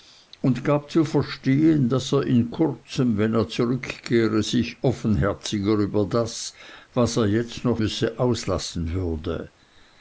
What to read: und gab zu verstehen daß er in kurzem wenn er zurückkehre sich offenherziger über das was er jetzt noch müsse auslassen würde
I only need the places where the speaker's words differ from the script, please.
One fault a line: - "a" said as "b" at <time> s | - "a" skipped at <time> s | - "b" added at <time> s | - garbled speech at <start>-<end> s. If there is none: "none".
none